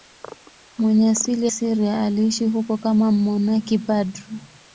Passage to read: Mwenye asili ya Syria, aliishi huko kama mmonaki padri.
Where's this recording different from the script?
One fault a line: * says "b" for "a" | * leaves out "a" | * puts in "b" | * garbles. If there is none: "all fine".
* leaves out "ya"